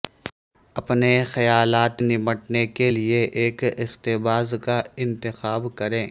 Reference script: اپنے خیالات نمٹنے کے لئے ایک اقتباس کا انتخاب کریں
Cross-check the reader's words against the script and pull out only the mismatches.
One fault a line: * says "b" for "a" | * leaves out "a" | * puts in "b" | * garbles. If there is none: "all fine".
all fine